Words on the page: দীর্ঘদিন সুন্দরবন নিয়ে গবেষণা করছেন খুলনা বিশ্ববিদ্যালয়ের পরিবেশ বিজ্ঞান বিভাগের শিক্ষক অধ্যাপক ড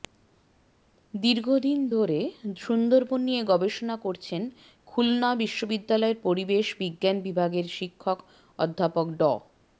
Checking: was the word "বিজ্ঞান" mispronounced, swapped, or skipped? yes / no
no